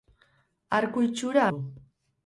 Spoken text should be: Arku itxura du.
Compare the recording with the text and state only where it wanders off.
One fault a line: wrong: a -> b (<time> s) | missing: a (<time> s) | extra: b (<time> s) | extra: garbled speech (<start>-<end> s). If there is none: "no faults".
no faults